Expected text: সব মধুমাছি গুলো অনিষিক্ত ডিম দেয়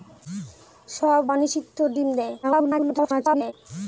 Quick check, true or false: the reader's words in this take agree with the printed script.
false